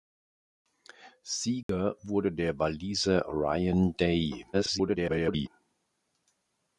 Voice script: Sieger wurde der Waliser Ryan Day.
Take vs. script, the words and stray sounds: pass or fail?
fail